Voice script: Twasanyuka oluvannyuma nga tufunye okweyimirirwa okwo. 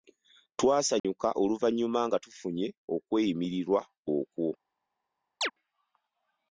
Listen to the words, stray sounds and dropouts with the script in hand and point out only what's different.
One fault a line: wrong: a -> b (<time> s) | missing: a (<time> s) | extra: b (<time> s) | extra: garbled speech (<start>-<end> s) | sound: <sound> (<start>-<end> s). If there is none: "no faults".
sound: dropout (1.0-1.0 s)
sound: chirp (5.4-5.5 s)